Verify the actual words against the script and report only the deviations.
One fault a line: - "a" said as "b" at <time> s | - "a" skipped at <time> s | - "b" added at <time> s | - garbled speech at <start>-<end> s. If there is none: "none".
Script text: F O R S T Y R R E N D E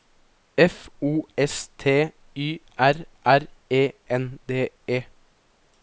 - "R" skipped at 1.3 s